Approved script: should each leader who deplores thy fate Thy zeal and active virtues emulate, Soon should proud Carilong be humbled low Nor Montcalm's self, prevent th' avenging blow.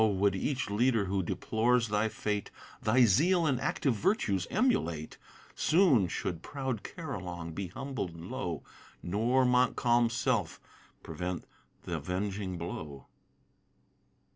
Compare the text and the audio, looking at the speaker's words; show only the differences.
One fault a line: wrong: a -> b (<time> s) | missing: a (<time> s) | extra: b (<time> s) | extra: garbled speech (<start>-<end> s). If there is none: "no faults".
wrong: should -> would (0.0 s)